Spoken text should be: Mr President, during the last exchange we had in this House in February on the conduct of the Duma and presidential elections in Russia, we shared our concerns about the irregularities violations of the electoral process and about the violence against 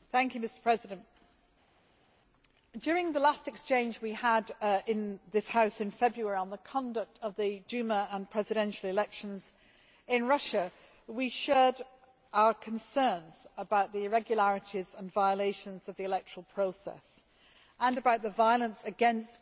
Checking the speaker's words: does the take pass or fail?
fail